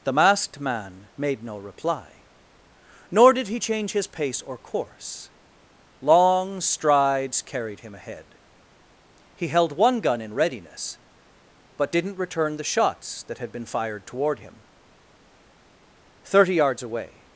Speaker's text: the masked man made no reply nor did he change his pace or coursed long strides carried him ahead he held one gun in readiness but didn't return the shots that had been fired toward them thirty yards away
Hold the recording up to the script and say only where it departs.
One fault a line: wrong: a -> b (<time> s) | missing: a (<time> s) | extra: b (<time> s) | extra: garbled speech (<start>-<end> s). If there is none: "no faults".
wrong: coursed -> course (4.6 s)
wrong: them -> him (14.4 s)